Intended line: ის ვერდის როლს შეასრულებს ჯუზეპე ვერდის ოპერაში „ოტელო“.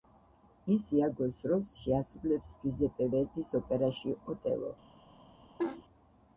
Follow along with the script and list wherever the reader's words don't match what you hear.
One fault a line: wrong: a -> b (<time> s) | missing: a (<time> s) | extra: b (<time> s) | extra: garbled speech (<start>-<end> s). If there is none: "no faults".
wrong: ვერდის -> იაგოს (1.0 s)